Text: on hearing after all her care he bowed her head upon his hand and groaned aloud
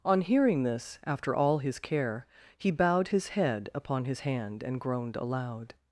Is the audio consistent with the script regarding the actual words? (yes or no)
no